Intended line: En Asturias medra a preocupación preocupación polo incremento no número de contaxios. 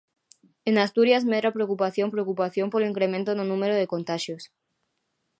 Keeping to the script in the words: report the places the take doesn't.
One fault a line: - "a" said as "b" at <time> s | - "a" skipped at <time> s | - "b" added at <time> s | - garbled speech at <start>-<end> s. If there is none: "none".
none